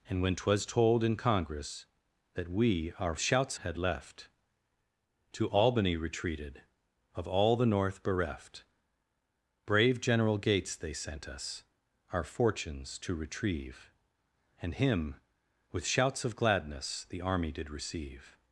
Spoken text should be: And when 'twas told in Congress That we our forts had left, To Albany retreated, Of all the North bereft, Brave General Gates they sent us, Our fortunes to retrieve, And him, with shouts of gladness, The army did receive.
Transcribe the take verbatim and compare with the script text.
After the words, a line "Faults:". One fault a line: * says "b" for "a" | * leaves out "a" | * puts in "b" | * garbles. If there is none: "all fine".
And when 'twas told in Congress That we our shouts had left, To Albany retreated, Of all the North bereft, Brave General Gates they sent us, Our fortunes to retrieve, And him, with shouts of gladness, The army did receive.
Faults:
* says "shouts" for "forts"